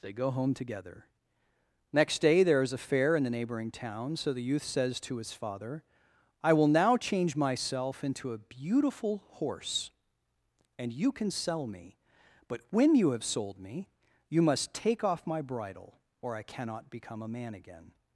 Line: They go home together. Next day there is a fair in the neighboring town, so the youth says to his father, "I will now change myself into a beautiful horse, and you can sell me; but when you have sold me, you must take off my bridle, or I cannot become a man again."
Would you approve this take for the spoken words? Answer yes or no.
yes